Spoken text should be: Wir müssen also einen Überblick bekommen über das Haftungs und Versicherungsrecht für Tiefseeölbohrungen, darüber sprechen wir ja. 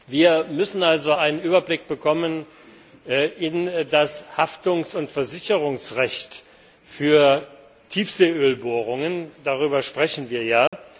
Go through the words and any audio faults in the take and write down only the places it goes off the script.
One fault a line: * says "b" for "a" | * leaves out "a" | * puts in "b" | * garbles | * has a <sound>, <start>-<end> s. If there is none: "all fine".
* has a dropout, 10.7-10.7 s